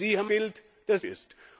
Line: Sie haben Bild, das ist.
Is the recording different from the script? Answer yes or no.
no